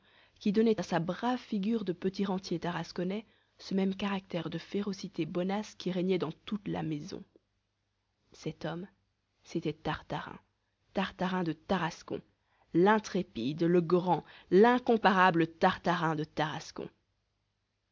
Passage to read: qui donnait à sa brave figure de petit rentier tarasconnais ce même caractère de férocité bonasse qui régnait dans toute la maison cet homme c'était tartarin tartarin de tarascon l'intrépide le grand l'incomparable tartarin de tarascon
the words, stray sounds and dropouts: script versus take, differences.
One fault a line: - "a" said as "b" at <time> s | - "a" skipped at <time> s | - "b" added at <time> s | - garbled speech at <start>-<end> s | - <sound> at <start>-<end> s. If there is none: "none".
none